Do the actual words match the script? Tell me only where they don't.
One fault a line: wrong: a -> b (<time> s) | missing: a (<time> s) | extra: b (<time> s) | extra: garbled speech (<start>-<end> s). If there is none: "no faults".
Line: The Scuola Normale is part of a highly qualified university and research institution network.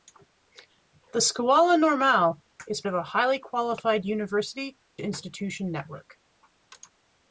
missing: part (2.8 s)
missing: and research (4.8 s)